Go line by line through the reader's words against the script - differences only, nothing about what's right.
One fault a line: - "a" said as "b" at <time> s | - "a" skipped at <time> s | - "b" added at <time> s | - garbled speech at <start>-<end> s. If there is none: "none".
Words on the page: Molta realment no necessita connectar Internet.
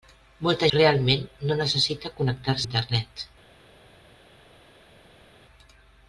none